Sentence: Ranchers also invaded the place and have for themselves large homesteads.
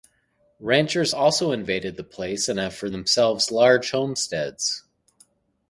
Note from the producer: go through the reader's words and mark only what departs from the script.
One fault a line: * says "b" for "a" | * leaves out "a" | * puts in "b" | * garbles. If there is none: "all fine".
all fine